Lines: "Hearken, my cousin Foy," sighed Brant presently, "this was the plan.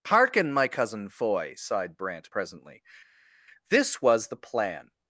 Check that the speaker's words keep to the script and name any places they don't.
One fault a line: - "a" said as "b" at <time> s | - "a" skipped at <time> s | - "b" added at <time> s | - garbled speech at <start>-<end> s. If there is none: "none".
none